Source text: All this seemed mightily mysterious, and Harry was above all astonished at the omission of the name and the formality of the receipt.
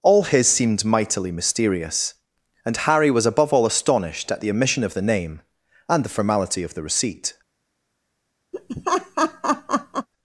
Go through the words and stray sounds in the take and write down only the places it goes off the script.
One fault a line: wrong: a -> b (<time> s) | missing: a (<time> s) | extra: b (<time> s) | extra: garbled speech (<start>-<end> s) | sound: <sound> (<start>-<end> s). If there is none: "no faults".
wrong: this -> his (0.2 s)
sound: laugh (8.5-10.1 s)